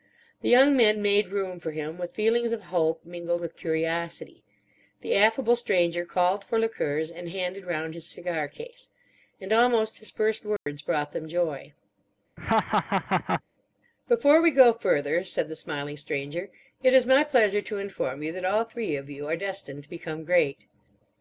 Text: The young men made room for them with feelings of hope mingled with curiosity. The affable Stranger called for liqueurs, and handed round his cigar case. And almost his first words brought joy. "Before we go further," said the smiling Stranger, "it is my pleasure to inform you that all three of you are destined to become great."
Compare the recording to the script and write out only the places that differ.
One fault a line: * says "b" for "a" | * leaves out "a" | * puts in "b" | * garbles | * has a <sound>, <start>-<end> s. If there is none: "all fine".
* says "him" for "them"
* has a dropout, 10.6-10.7 s
* puts in "them"
* has a laugh, 12.4-13.4 s